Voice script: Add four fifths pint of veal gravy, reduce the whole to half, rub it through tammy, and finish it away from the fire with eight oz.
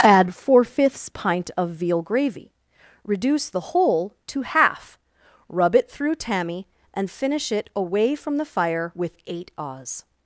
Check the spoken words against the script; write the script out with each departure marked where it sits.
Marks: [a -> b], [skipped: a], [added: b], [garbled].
Add four fifths pint of veal gravy, reduce the whole to half, rub it through tammy, and finish it away from the fire with eight oz.